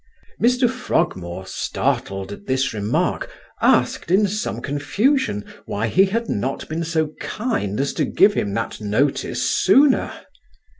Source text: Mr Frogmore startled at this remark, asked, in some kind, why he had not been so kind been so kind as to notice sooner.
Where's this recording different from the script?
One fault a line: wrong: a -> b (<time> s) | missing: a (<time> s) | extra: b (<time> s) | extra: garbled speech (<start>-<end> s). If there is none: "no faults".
wrong: kind -> confusion (4.6 s)
wrong: been so kind as to -> as to give him that (7.8 s)